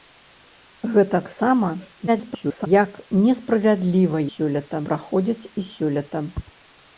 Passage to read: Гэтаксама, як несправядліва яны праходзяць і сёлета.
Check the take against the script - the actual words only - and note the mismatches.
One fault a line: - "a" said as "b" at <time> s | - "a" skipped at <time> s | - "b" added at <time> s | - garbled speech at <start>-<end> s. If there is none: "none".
- garbled speech at 2.1-2.7 s
- "яны" said as "сёлета" at 4.3 s